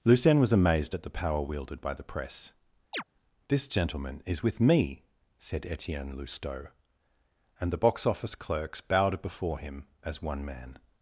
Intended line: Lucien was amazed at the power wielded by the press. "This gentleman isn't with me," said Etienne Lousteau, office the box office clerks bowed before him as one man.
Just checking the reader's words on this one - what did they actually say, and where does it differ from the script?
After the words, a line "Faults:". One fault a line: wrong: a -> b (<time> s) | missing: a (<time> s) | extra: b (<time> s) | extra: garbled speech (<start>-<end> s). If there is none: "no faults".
Lucien was amazed at the power wielded by the press. "This gentleman is with me," said Etienne Lousteau, and the box office clerks bowed before him as one man.
Faults:
wrong: isn't -> is (4.3 s)
wrong: office -> and (7.6 s)